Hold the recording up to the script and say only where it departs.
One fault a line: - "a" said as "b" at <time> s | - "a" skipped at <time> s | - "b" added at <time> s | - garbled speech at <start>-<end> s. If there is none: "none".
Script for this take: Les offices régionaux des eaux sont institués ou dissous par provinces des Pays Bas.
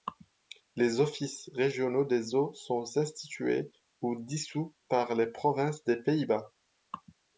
- "les" added at 5.1 s